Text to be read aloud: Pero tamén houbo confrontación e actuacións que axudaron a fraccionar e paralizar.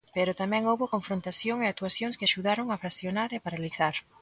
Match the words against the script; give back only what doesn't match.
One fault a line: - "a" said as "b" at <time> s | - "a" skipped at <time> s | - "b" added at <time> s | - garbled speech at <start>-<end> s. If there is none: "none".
none